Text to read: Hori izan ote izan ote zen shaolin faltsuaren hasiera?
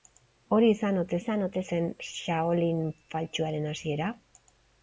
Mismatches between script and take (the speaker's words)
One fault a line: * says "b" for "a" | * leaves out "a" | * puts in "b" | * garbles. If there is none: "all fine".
all fine